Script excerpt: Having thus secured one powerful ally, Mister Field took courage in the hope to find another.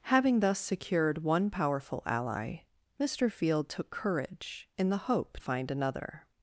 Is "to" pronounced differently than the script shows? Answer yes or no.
yes